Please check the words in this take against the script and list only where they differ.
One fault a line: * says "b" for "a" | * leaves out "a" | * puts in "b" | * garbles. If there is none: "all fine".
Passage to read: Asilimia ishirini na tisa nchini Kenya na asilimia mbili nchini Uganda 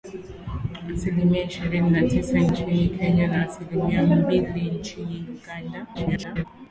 * garbles